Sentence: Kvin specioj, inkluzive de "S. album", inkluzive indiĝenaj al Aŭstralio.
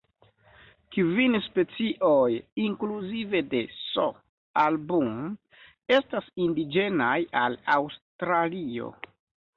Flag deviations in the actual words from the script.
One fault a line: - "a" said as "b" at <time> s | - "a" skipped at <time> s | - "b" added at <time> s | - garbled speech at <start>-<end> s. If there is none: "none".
- "inkluzive" said as "estas" at 6.0 s